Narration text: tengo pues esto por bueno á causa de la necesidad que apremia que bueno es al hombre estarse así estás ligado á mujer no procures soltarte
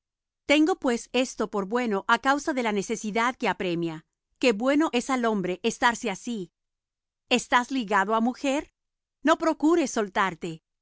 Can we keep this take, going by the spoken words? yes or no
yes